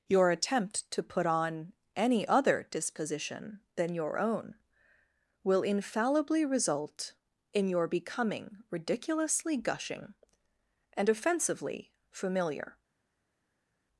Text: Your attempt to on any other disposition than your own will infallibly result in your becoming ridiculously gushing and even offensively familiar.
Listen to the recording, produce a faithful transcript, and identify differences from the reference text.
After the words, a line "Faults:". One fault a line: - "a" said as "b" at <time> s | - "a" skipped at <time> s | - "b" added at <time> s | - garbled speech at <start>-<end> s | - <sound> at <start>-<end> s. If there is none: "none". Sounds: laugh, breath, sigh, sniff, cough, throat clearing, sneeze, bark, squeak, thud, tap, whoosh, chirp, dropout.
Your attempt to put on any other disposition than your own will infallibly result in your becoming ridiculously gushing and offensively familiar.
Faults:
- "put" added at 1.0 s
- "even" skipped at 11.1 s